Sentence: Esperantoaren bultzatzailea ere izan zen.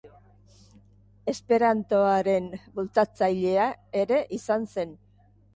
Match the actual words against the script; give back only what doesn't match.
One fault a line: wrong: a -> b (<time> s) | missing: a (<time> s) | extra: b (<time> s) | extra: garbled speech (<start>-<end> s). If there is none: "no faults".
no faults